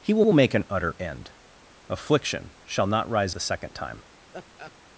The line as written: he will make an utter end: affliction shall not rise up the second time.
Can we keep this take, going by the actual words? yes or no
no